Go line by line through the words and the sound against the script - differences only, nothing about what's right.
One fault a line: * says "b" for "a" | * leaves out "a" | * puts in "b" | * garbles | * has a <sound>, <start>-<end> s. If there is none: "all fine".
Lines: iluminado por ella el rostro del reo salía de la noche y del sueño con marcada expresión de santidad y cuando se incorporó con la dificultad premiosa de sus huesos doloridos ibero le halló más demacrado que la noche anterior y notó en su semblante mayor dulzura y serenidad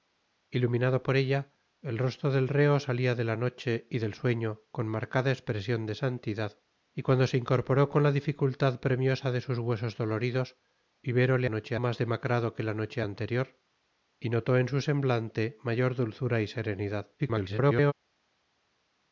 * says "noche" for "halló"
* garbles